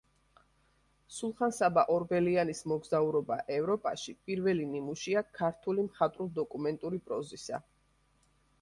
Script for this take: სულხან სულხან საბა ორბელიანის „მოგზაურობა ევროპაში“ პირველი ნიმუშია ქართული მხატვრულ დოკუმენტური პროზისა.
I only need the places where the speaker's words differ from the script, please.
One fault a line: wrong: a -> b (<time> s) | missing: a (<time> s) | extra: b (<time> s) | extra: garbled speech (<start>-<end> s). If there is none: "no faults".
missing: სულხან (1.5 s)